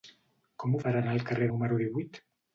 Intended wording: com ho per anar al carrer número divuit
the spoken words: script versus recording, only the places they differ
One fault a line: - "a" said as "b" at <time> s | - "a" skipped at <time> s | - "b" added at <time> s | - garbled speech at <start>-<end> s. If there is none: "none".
none